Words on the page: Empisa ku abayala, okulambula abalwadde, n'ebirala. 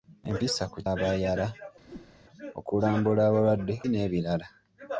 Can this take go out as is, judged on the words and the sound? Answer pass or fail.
fail